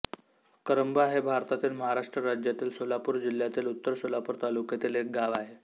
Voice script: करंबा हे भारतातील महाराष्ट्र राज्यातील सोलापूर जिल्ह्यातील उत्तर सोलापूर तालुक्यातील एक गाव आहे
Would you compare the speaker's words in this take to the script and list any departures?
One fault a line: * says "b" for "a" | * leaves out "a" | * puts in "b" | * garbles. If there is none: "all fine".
all fine